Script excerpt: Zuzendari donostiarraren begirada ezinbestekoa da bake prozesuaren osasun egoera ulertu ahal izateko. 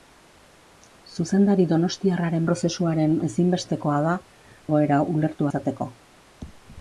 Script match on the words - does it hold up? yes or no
no